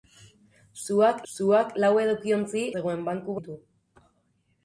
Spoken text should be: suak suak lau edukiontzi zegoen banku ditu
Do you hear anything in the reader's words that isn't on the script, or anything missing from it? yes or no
no